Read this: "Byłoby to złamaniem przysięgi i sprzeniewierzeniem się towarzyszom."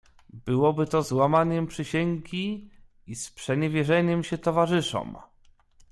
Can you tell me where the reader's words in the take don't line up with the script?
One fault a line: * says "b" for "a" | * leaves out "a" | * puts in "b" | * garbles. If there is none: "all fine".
all fine